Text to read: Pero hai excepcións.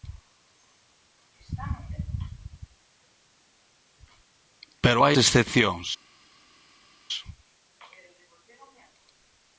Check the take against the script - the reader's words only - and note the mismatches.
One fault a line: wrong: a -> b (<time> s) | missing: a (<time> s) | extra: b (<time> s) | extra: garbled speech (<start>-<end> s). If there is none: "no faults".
no faults